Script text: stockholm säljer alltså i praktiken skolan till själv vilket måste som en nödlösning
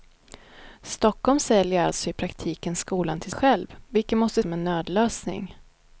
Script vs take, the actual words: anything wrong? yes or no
no